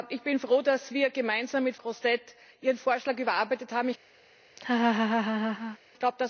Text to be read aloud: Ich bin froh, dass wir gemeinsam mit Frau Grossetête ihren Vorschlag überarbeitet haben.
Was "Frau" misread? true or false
true